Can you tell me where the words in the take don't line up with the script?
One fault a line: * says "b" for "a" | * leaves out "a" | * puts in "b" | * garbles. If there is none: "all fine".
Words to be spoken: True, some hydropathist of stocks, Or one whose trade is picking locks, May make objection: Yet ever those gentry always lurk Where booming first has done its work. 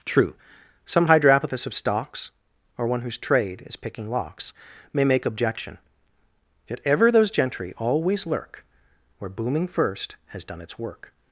all fine